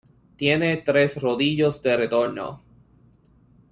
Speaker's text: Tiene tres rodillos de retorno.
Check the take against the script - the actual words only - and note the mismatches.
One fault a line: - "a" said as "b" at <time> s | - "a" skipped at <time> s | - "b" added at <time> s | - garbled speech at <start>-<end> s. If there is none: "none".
none